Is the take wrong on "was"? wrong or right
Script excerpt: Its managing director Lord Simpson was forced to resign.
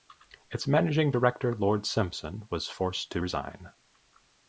right